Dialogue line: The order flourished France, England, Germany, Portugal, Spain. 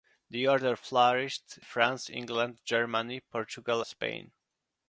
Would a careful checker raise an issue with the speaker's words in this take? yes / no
no